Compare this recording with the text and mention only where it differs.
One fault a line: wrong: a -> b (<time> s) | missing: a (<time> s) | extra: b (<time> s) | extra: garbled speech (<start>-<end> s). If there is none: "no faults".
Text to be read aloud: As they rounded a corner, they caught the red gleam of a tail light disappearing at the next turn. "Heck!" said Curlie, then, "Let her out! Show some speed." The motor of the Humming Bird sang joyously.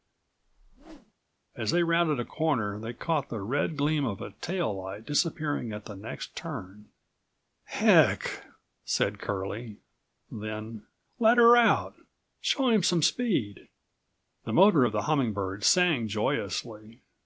extra: him (12.7 s)